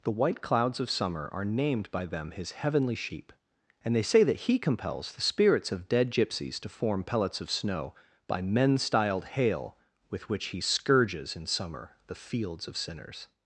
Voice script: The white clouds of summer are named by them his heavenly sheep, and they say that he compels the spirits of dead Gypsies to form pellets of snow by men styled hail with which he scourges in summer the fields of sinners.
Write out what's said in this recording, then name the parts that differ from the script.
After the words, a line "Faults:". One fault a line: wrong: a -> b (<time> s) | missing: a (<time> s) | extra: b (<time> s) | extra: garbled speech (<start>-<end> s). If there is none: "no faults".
The white clouds of summer are named by them his heavenly sheep, and they say that he compels the spirits of dead Gypsies to form pellets of snow by men styled hail with which he scourges in summer the fields of sinners.
Faults:
no faults